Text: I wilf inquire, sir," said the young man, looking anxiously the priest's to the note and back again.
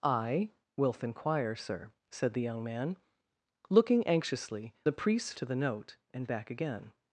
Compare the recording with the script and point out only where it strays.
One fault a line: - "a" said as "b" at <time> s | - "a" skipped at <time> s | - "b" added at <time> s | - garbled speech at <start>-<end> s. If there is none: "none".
none